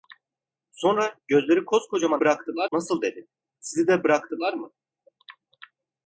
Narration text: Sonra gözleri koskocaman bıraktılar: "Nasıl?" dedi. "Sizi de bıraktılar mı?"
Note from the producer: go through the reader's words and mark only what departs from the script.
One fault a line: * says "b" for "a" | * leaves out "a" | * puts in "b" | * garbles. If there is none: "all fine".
all fine